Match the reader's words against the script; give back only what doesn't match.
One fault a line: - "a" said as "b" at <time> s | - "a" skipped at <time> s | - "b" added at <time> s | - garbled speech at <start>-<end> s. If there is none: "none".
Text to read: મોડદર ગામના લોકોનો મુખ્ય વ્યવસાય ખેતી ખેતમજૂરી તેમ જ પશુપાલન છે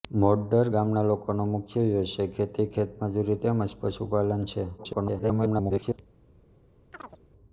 - garbled speech at 4.8-6.0 s